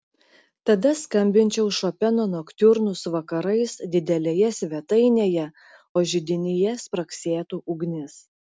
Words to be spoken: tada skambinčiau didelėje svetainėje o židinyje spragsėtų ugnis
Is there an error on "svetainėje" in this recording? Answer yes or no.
no